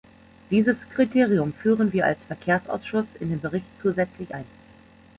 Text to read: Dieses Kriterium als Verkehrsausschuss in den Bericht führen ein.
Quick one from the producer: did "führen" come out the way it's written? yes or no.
no